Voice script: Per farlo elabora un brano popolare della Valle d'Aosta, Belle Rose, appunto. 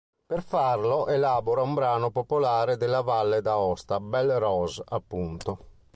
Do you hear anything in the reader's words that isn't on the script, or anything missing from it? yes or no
no